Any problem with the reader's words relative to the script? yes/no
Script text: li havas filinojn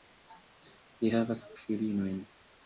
no